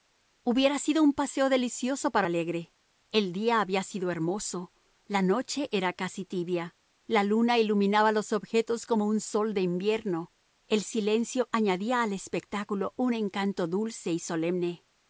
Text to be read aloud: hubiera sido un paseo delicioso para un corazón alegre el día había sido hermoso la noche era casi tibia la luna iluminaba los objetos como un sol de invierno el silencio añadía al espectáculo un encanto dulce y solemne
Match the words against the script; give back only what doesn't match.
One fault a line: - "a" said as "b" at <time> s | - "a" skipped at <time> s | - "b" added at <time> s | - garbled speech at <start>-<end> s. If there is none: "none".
- "un corazón" skipped at 2.3 s